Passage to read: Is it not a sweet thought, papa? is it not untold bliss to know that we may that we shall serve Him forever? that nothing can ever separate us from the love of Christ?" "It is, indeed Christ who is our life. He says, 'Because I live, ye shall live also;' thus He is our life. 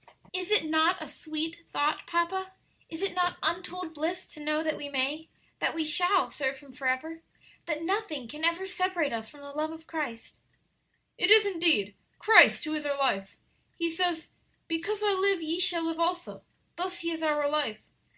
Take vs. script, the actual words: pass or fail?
pass